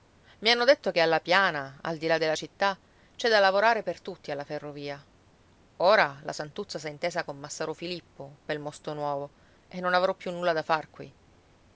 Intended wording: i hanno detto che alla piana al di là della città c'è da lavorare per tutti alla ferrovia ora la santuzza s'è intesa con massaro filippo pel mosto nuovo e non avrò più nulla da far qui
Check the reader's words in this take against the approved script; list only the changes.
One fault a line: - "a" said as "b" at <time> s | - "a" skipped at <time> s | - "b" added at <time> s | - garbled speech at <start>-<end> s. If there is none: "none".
none